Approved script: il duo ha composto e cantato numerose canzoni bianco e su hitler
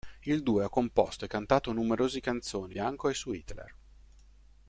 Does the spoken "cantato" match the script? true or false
true